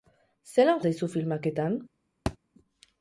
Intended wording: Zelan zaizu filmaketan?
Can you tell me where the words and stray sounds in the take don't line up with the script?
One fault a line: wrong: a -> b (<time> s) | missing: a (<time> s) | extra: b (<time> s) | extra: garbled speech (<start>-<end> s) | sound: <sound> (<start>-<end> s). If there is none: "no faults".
sound: thud (2.3-2.4 s)